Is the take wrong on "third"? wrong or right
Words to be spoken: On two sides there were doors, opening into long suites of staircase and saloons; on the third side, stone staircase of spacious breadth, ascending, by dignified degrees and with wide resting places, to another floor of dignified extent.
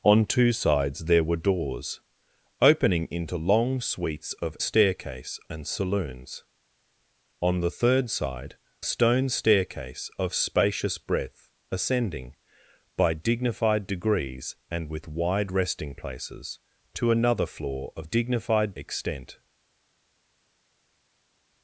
right